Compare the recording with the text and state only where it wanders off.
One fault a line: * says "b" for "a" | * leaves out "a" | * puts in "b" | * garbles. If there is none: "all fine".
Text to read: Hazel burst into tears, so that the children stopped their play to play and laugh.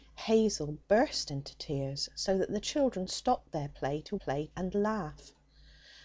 all fine